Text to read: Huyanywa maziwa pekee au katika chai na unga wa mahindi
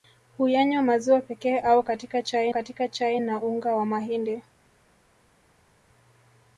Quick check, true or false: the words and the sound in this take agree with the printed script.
false